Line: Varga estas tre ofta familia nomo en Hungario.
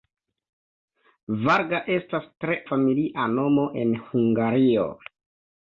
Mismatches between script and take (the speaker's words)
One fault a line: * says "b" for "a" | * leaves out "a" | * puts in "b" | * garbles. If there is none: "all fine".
* leaves out "ofta"